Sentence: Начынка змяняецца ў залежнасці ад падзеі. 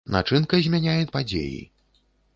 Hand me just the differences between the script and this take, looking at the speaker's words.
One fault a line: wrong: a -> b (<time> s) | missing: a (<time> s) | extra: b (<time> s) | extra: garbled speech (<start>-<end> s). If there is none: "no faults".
missing: ў залежнасці (1.1 s)